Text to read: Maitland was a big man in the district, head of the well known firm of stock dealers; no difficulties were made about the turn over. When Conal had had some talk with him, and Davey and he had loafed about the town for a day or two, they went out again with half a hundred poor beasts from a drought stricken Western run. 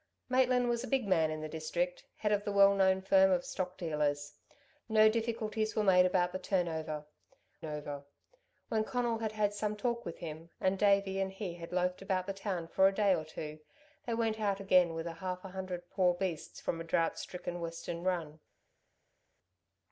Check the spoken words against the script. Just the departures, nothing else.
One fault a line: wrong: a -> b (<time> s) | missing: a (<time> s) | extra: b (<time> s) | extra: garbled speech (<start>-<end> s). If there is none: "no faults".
extra: over (7.6 s)